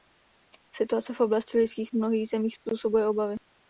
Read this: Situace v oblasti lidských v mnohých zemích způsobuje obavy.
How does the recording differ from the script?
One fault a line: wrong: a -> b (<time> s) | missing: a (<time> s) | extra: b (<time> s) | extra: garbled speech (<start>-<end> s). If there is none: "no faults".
no faults